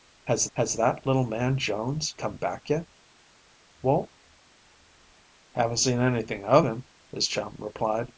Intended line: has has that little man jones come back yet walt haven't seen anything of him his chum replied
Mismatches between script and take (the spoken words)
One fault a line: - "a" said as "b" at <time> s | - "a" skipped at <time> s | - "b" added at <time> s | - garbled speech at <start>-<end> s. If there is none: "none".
none